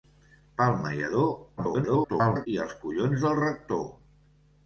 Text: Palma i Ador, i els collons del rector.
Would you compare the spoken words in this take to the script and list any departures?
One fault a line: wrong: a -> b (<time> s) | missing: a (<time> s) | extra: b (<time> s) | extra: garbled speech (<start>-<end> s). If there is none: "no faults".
extra: garbled speech (1.6-2.5 s)